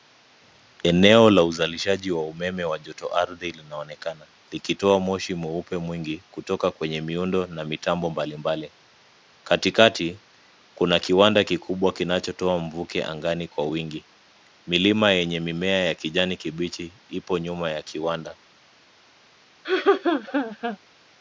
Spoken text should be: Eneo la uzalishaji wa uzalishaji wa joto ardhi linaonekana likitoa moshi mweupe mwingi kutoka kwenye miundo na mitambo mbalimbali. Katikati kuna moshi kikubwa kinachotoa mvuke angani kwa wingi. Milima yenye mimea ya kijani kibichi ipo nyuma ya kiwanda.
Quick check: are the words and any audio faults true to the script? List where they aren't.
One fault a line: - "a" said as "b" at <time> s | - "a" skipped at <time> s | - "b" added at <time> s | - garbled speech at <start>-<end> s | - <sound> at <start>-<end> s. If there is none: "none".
- "uzalishaji" said as "umeme" at 2.3 s
- "moshi" said as "kiwanda" at 11.0 s
- laugh at 19.6-20.8 s